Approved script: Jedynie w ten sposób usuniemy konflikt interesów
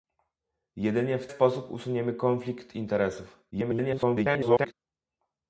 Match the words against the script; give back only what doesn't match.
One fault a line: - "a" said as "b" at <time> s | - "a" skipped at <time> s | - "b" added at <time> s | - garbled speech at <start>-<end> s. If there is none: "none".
- "ten" skipped at 1.3 s
- garbled speech at 3.5-4.7 s